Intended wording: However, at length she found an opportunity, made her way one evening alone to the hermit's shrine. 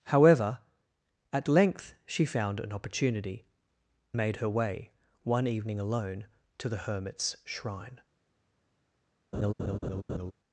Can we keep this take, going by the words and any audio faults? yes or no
no